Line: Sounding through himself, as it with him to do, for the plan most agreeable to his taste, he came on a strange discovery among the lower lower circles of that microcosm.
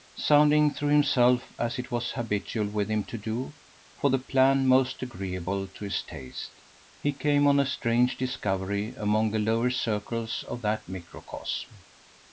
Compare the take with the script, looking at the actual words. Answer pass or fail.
fail